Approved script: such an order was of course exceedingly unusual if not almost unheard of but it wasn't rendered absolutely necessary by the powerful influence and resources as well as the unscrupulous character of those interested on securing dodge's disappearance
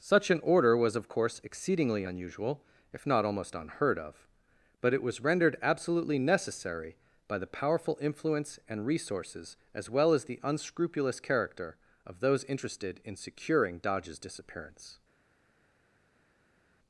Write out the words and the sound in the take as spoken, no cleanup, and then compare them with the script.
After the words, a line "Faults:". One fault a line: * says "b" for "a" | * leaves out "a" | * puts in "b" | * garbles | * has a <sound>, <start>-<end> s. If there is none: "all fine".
such an order was of course exceedingly unusual if not almost unheard of but it was rendered absolutely necessary by the powerful influence and resources as well as the unscrupulous character of those interested in securing dodge's disappearance
Faults:
* says "was" for "wasn't"
* says "in" for "on"